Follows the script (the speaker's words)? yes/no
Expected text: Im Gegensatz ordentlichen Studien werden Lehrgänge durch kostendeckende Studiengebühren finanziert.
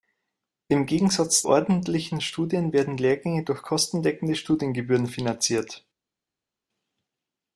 yes